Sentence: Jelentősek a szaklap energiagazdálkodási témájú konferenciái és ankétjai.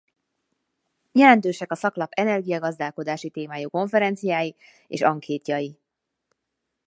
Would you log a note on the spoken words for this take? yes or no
no